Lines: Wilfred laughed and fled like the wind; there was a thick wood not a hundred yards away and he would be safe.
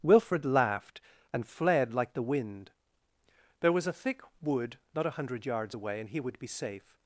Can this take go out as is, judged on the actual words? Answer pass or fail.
pass